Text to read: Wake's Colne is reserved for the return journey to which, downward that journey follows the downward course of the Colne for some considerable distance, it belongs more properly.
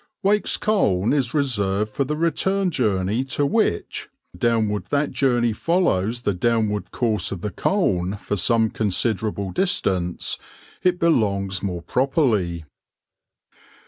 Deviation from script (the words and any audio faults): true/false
false